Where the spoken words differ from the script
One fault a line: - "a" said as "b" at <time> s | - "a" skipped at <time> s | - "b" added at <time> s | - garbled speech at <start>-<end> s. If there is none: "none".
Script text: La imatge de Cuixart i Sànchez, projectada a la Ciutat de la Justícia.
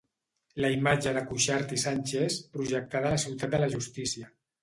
none